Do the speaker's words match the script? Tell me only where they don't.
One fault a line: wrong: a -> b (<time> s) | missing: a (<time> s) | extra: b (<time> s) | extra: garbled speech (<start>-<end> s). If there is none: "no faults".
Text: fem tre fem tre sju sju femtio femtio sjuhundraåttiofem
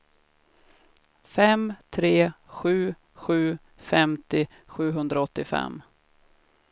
missing: fem tre (2.3 s)
missing: femtio (4.4 s)